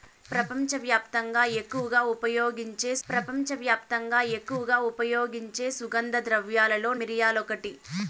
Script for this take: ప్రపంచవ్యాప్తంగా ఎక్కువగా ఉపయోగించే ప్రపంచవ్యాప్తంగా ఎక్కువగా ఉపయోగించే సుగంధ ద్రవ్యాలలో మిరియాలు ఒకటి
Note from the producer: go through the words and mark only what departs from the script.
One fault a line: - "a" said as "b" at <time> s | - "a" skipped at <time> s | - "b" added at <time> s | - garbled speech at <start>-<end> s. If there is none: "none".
none